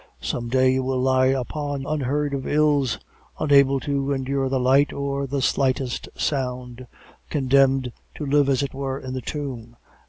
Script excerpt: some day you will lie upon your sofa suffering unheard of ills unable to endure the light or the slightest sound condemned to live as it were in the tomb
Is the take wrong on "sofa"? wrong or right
wrong